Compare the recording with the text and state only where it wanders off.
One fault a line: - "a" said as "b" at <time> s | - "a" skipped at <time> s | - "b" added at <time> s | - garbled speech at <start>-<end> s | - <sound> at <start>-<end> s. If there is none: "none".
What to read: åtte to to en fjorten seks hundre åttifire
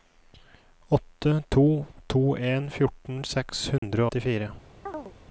- dropout at 3.8-3.8 s
- chirp at 4.9-5.1 s